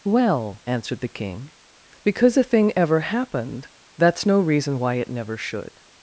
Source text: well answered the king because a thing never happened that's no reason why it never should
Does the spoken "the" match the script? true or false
true